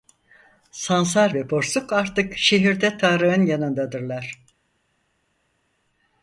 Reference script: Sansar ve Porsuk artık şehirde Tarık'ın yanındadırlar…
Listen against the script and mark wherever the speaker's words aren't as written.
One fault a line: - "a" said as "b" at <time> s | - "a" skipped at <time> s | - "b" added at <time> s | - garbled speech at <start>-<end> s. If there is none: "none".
none